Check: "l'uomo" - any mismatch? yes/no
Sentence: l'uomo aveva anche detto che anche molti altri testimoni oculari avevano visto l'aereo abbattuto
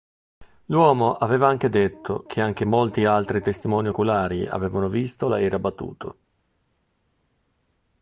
no